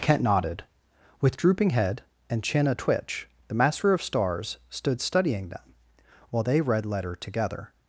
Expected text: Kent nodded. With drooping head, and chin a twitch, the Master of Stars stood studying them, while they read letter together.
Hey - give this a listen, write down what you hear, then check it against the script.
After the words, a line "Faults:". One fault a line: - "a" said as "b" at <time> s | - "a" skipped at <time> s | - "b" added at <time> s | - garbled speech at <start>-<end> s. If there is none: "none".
Kent nodded. With drooping head, and chin a twitch, the Master of Stars stood studying them, while they read letter together.
Faults:
none